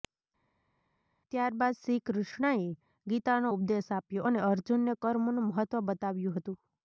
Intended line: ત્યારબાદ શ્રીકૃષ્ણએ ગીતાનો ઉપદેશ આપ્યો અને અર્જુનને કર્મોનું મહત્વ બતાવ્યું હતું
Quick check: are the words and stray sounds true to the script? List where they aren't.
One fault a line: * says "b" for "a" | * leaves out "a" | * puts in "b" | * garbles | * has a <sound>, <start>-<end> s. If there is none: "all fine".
all fine